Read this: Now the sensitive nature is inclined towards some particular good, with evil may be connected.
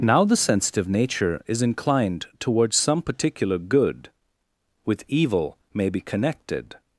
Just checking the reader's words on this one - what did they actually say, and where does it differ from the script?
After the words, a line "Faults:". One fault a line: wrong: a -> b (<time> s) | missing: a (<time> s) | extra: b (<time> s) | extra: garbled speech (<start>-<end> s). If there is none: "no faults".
Now the sensitive nature is inclined towards some particular good, with evil may be connected.
Faults:
no faults